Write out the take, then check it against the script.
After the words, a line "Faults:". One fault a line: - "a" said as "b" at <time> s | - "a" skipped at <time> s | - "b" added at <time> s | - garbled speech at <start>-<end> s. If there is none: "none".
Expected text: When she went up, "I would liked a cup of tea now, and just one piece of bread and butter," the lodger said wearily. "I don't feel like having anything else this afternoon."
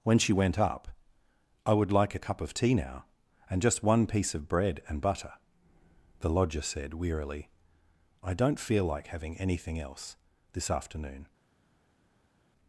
When she went up, "I would like a cup of tea now, and just one piece of bread and butter," the lodger said wearily. "I don't feel like having anything else this afternoon."
Faults:
- "liked" said as "like" at 1.9 s